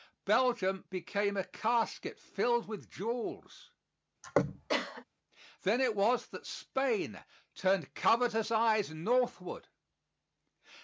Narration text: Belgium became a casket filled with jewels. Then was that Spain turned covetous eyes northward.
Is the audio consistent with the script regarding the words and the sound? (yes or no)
no